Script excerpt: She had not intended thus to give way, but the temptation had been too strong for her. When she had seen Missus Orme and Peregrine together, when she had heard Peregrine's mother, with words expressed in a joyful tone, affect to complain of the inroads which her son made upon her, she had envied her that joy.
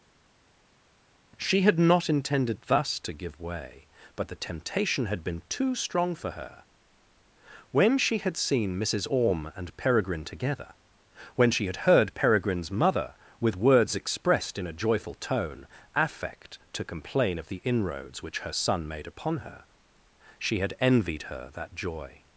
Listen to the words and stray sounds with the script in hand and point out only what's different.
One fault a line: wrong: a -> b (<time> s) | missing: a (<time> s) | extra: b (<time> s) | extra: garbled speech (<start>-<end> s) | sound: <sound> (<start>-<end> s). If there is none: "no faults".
no faults